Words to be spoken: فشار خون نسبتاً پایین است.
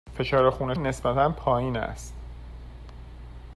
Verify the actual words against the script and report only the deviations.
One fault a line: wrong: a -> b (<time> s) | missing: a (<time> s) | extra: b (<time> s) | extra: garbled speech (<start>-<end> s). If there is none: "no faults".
no faults